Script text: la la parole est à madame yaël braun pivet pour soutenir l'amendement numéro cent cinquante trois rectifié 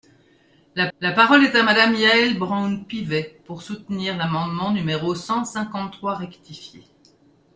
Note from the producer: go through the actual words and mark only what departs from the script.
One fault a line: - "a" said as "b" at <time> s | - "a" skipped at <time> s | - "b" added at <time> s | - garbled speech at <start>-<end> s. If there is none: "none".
none